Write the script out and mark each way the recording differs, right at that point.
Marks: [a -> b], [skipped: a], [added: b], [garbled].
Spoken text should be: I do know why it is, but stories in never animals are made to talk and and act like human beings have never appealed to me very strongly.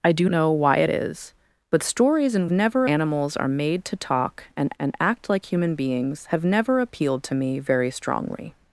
I do know why it is, but stories in never animals are made to talk and and act like human beings have never appealed to me very strongly.